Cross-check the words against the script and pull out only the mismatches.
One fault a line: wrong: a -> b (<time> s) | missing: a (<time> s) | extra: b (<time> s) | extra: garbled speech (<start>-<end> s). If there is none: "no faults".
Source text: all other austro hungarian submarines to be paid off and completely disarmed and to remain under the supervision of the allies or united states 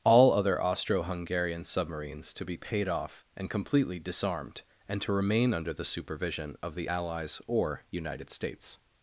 no faults